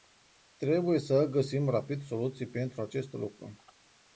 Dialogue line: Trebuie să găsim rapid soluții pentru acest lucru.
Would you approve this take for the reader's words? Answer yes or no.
yes